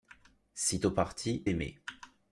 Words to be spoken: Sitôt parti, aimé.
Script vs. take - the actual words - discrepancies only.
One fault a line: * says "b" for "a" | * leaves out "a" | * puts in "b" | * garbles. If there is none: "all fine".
all fine